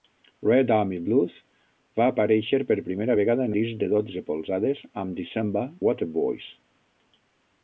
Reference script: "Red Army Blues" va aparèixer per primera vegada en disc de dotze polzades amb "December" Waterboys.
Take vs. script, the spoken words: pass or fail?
pass